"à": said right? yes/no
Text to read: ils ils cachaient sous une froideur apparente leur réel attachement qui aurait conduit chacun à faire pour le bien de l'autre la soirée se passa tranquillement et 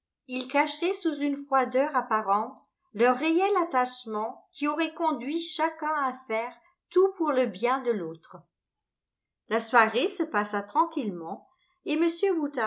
yes